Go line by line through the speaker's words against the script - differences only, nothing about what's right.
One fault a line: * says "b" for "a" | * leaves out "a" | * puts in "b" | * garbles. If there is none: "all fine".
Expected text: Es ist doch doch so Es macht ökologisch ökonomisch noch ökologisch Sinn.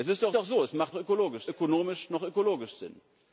all fine